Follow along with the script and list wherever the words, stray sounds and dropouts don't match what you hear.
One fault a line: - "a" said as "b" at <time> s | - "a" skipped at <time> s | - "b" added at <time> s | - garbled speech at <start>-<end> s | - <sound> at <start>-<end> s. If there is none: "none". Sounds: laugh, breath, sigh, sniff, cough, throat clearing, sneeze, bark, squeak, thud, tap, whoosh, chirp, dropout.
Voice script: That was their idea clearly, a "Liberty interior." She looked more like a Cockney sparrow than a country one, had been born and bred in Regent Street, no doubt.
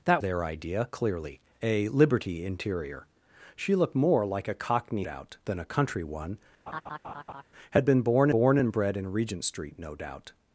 - "was" skipped at 0.2 s
- "sparrow" said as "doubt" at 5.0 s
- laugh at 6.7-7.4 s
- "born" added at 8.3 s